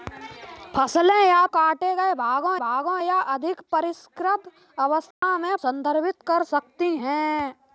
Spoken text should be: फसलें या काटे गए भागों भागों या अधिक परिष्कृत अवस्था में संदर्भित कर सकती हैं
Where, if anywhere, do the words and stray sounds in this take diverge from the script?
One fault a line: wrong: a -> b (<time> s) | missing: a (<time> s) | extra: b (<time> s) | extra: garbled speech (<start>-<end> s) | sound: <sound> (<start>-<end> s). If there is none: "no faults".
sound: dropout (5.1-5.2 s)